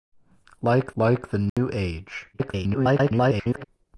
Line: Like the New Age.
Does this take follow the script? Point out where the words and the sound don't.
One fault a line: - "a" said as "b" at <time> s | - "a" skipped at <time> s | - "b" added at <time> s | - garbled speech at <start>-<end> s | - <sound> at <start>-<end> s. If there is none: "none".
- "like" added at 1.0 s
- dropout at 1.5-1.6 s
- garbled speech at 2.3-3.6 s